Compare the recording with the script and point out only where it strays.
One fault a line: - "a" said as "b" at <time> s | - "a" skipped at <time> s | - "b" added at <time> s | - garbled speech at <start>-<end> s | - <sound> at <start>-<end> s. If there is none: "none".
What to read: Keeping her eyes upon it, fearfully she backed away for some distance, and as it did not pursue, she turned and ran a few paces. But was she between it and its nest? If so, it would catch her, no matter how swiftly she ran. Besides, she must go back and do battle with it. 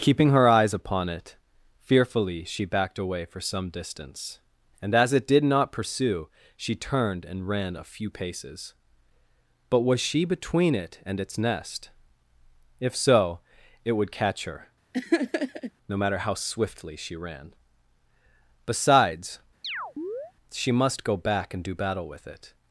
- laugh at 14.9-15.7 s
- chirp at 19.6-20.3 s